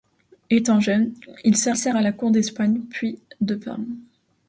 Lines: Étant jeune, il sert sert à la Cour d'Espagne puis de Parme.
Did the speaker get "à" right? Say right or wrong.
right